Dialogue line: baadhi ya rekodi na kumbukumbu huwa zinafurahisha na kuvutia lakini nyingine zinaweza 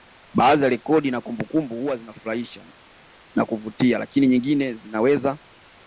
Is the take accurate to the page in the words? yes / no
yes